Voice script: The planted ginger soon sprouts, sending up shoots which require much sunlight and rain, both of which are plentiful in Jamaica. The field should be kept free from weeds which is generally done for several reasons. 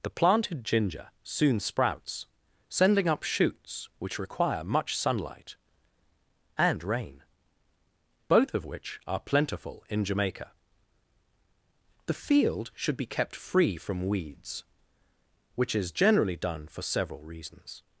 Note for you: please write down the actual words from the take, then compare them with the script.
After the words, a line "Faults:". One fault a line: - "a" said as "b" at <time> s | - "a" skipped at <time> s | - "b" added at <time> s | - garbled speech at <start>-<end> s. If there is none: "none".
The planted ginger soon sprouts, sending up shoots which require much sunlight and rain, both of which are plentiful in Jamaica. The field should be kept free from weeds which is generally done for several reasons.
Faults:
none